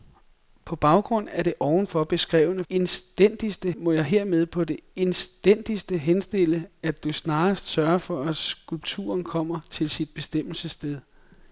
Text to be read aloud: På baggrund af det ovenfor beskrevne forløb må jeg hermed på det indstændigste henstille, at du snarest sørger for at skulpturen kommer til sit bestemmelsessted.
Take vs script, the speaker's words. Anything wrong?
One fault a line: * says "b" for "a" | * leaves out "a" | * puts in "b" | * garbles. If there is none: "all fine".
* says "indstændigste" for "forløb"